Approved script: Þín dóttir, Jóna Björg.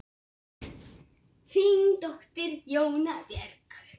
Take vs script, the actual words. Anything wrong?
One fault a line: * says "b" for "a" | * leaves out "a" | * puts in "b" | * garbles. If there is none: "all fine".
all fine